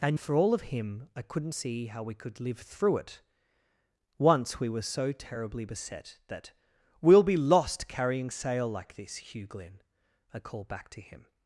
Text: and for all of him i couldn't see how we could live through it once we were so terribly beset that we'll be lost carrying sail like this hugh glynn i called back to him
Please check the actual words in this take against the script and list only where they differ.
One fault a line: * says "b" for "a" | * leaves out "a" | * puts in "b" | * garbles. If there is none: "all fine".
all fine